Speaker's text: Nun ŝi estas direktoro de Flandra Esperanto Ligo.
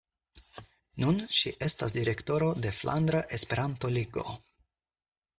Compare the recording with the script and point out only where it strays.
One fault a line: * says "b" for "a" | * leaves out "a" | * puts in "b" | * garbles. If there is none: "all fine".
all fine